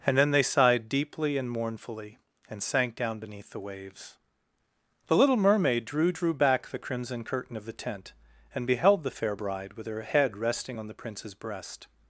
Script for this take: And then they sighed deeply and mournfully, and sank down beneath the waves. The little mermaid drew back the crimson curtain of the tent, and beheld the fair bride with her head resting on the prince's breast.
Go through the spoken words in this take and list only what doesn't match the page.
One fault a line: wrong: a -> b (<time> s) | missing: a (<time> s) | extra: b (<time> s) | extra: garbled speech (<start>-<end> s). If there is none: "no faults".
extra: drew (6.1 s)